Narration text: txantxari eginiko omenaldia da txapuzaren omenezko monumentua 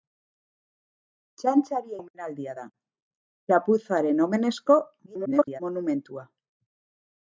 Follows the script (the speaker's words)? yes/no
no